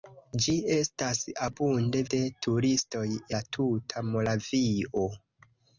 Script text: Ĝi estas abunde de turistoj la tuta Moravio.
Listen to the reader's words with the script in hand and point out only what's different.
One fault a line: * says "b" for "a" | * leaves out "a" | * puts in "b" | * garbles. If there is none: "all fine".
all fine